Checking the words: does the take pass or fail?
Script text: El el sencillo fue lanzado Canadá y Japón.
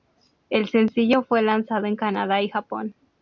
fail